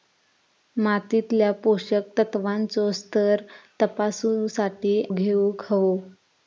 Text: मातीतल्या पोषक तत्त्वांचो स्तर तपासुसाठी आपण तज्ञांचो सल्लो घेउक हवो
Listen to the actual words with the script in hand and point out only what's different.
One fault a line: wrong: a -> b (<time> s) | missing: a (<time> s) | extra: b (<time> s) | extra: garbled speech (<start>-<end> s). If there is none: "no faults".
missing: आपण तज्ञांचो सल्लो (5.0 s)